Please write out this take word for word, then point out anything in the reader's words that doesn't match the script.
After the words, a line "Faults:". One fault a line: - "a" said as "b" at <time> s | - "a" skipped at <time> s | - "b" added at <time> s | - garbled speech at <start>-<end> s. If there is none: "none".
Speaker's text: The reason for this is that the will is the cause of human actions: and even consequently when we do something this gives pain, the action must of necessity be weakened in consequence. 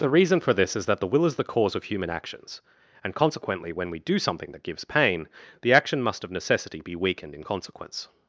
The reason for this is that the will is the cause of human actions: and consequently when we do something that gives pain, the action must of necessity be weakened in consequence.
Faults:
- "even" skipped at 3.1 s
- "this" said as "that" at 4.5 s